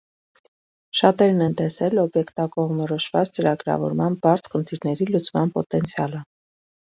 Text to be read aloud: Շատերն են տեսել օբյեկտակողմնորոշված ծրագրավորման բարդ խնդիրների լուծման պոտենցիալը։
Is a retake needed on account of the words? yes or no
no